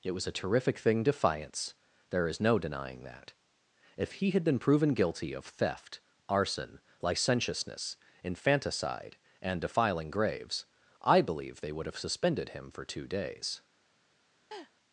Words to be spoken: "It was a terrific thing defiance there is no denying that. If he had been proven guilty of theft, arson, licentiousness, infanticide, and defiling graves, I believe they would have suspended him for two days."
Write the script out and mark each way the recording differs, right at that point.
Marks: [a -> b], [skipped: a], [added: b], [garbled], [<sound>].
"It was a terrific thing defiance there is no denying that. If he had been proven guilty of theft, arson, licentiousness, infanticide, and defiling graves, I believe they would have suspended him for two days." [laugh]